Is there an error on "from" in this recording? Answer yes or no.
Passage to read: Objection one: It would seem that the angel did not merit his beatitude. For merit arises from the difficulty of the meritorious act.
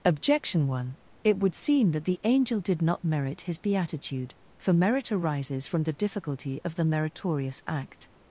no